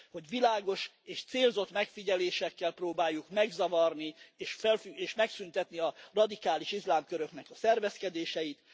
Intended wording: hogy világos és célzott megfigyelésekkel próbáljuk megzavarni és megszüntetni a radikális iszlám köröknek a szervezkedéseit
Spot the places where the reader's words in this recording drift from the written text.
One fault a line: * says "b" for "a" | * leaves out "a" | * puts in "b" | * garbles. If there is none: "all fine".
all fine